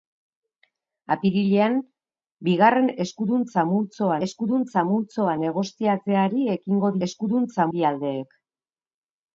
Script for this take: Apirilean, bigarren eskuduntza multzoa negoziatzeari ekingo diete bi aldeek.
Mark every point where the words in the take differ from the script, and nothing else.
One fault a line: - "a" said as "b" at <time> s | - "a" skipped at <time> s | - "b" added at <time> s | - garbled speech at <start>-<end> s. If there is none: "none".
- "eskuduntza multzoa" added at 4.3 s
- "diete" said as "eskuduntza" at 7.1 s